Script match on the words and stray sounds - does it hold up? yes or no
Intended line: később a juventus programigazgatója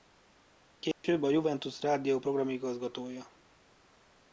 no